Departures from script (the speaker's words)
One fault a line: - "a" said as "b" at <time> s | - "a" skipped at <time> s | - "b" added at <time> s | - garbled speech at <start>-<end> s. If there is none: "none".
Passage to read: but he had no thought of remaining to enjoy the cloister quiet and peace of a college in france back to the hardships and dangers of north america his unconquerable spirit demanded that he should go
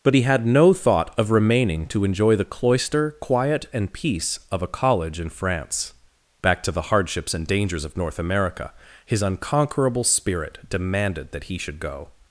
none